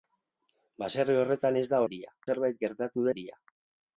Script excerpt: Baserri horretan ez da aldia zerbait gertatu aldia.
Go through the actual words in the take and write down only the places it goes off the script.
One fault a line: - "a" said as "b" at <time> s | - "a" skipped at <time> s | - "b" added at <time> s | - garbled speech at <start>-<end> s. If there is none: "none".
none